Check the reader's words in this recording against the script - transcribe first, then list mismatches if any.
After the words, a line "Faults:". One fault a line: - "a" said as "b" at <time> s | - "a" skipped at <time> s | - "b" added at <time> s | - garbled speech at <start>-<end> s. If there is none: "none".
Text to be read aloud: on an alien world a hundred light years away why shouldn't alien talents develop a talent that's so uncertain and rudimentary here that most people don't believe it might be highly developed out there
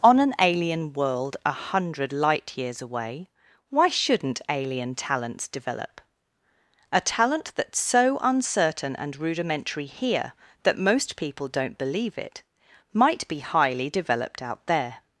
on an alien world a hundred light years away why shouldn't alien talents develop a talent that's so uncertain and rudimentary here that most people don't believe it might be highly developed out there
Faults:
none